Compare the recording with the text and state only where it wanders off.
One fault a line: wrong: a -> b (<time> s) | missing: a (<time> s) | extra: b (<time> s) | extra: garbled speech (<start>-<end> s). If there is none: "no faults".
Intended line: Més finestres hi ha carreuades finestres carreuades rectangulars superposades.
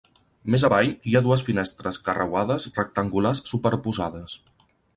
wrong: finestres -> avall (0.7 s)
wrong: carreuades -> dues (1.3 s)